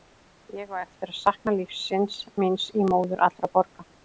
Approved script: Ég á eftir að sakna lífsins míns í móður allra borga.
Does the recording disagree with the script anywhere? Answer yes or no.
no